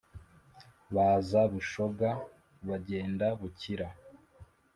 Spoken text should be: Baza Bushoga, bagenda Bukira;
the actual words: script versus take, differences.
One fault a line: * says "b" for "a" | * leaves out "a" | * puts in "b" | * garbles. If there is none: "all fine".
all fine